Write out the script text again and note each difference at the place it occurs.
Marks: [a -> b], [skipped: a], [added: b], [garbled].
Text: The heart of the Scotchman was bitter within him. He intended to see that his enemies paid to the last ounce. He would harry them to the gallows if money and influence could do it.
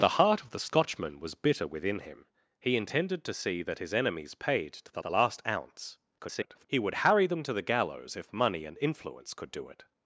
The heart of the Scotchman was bitter within him. He intended to see that his enemies paid to the [added: the] last ounce. [garbled] He would harry them to the gallows if money and influence could do it.